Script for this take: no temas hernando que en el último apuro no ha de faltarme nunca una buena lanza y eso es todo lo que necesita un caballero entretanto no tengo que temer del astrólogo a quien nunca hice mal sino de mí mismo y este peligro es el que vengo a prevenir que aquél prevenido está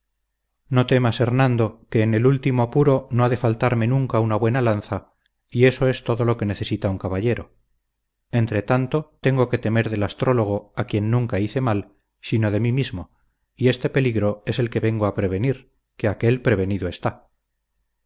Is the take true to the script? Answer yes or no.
no